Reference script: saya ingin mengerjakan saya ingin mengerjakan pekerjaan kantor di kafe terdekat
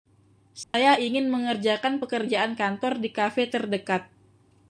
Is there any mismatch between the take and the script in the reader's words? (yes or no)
yes